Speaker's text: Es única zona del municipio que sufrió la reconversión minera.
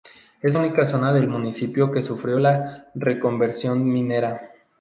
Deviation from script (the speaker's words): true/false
false